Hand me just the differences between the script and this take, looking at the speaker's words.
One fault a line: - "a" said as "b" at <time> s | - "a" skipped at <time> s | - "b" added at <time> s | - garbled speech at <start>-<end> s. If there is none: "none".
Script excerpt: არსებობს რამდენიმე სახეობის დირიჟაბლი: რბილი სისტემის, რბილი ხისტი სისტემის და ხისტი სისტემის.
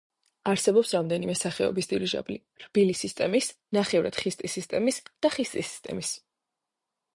- "რბილი" said as "ნახევრად" at 3.8 s